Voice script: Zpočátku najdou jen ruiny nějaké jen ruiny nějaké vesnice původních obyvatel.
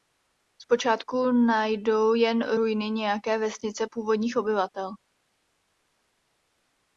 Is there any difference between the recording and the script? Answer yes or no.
yes